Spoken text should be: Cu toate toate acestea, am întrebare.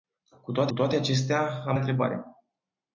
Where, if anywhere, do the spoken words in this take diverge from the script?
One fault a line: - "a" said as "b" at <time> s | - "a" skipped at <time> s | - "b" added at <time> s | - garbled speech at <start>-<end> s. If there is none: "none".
none